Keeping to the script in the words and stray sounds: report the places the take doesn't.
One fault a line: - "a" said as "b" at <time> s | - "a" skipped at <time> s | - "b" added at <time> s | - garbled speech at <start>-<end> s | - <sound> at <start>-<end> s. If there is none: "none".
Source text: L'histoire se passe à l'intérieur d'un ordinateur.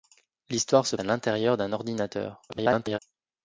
- "passe" skipped at 0.9 s
- garbled speech at 2.5-3.0 s